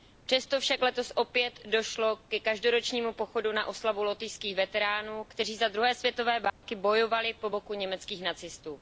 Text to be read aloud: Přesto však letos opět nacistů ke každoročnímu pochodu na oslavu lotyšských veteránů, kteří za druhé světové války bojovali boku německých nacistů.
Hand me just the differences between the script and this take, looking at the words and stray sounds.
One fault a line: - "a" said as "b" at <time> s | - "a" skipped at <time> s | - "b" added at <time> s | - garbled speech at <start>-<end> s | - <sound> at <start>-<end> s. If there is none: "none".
- "nacistů" said as "došlo" at 1.6 s
- dropout at 6.5-6.6 s
- "po" added at 7.3 s